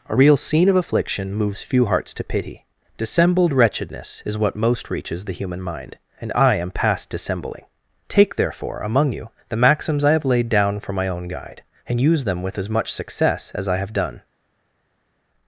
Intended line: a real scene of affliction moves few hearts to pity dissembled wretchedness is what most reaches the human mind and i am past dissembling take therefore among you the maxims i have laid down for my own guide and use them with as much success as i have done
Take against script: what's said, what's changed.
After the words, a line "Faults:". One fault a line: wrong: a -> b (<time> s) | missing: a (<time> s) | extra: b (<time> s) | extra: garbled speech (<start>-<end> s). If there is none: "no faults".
a real scene of affliction moves few hearts to pity dissembled wretchedness is what most reaches the human mind and i am past dissembling take therefore among you the maxims i have laid down for my own guide and use them with as much success as i have done
Faults:
no faults